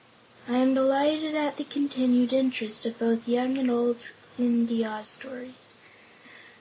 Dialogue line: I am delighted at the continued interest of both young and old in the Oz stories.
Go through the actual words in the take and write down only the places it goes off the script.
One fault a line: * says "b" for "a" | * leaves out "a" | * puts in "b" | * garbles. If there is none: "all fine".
all fine